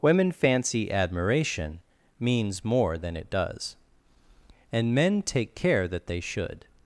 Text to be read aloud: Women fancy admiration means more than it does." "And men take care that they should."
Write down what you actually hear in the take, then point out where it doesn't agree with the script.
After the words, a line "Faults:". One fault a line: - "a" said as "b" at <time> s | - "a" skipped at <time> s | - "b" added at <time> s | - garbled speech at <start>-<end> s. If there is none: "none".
Women fancy admiration means more than it does." "And men take care that they should."
Faults:
none